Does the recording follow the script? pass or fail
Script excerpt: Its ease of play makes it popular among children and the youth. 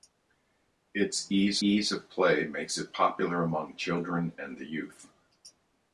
fail